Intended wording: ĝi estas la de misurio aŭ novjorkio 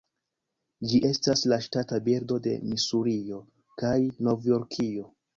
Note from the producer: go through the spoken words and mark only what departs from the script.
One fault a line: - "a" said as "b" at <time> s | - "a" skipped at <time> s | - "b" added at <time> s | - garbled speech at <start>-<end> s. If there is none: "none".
- "ŝtata birdo" added at 1.7 s
- "aŭ" said as "kaj" at 3.8 s